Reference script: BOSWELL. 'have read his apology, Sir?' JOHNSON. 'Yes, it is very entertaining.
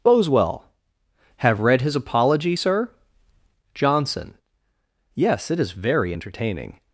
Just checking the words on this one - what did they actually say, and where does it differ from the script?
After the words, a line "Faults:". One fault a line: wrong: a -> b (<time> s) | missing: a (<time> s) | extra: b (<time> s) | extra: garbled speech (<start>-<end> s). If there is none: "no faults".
BOSWELL. 'have read his apology, Sir?' JOHNSON. 'Yes, it is very entertaining.
Faults:
no faults